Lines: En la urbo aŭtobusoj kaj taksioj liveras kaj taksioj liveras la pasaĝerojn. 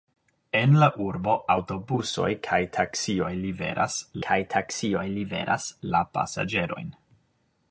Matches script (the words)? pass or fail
pass